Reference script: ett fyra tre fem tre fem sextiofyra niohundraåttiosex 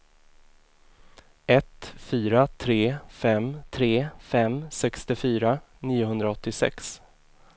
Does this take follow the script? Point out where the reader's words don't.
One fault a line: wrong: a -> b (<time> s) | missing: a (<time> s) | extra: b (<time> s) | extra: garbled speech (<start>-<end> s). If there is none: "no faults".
no faults